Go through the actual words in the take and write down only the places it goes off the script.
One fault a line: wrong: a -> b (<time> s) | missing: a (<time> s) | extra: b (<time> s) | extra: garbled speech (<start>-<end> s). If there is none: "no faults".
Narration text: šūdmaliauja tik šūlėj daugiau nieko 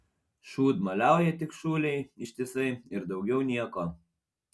extra: ištisai ir (2.3 s)